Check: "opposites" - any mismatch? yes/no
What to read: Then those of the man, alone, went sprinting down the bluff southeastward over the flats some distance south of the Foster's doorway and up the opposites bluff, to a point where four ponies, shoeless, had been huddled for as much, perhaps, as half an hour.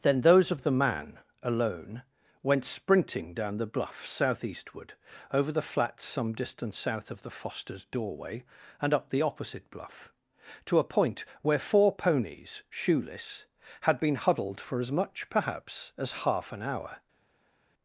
yes